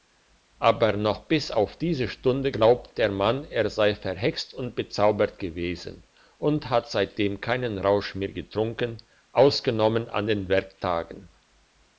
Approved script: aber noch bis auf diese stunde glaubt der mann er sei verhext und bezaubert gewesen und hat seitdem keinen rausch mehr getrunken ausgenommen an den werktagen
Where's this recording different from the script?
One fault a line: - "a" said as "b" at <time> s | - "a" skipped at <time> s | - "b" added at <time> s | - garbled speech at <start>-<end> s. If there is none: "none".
none